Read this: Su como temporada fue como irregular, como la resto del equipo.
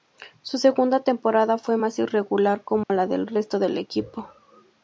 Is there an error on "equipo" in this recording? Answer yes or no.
no